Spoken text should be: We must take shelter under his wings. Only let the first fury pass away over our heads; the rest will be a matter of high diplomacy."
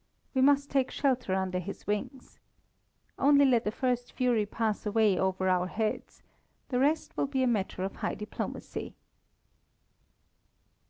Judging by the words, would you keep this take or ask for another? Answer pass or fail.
pass